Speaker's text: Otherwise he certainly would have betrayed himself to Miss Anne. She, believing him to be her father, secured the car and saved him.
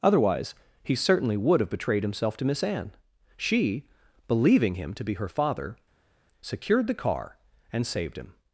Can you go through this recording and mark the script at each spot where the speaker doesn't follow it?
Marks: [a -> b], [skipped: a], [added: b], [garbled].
Otherwise he certainly would have betrayed himself to Miss Anne. She, believing him to be her father, secured the car and saved him.